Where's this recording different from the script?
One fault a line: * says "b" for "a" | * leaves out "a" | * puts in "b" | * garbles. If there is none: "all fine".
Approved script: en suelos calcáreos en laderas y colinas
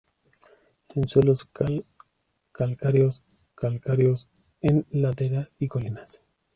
* puts in "calcáreos"